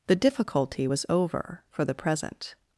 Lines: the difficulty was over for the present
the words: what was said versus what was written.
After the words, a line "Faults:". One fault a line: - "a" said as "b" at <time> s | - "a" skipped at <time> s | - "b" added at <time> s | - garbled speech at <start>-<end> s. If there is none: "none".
the difficulty was over for the present
Faults:
none